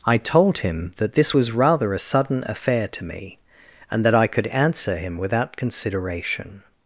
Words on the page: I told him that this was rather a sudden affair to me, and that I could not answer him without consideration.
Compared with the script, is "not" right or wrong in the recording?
wrong